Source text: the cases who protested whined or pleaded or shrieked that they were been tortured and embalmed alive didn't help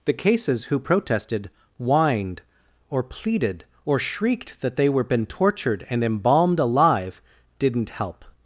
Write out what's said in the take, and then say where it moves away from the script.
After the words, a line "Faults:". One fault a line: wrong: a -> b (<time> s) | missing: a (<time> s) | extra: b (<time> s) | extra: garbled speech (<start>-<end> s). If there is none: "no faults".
the cases who protested whined or pleaded or shrieked that they were been tortured and embalmed alive didn't help
Faults:
no faults